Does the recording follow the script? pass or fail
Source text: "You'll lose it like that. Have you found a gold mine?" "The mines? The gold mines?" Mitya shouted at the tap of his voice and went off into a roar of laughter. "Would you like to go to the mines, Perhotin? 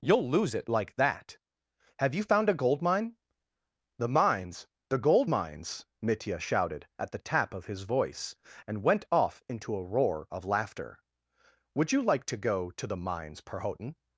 pass